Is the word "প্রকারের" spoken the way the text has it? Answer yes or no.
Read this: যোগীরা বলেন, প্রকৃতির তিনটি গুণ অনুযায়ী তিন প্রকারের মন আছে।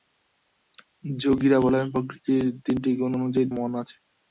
no